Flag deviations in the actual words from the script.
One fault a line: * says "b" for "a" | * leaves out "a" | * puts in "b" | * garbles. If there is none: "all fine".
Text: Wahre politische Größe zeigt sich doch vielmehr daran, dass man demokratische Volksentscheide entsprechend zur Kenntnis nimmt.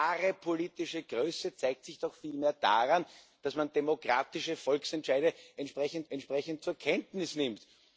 * puts in "entsprechend"